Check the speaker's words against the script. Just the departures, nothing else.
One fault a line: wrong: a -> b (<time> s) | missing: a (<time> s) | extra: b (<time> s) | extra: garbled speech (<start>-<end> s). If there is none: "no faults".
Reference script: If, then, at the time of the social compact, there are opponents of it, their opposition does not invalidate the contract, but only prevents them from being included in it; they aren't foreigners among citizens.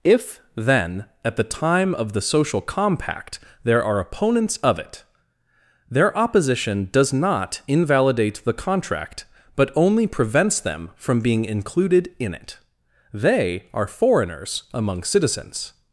wrong: aren't -> are (13.7 s)